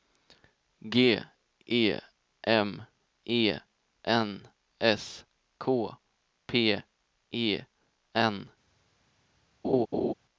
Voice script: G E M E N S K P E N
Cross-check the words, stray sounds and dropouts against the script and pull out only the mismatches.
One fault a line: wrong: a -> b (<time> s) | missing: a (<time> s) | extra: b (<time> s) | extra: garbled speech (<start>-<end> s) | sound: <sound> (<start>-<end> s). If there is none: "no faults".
sound: laugh (9.6-10.1 s)